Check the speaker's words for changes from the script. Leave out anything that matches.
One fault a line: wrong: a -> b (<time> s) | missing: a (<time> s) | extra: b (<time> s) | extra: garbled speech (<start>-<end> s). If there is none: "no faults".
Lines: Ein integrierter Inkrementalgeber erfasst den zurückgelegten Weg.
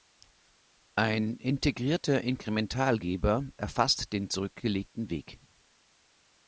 no faults